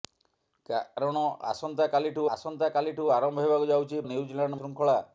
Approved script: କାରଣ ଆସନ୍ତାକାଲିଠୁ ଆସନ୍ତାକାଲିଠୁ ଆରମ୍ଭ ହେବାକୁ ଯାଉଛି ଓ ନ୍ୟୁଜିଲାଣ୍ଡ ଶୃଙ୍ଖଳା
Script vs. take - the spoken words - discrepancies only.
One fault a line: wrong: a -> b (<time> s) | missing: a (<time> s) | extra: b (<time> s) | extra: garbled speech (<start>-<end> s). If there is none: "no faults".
no faults